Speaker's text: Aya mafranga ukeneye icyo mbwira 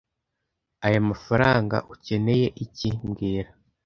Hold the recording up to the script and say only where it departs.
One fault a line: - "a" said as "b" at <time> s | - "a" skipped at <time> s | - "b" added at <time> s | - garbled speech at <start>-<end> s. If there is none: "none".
- "icyo" said as "iki" at 2.6 s